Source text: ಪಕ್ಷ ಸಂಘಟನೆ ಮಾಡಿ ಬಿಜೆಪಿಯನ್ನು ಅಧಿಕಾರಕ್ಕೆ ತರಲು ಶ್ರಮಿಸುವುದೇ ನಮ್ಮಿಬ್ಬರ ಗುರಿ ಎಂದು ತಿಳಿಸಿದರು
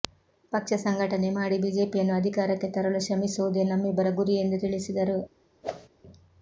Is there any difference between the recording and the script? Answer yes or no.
no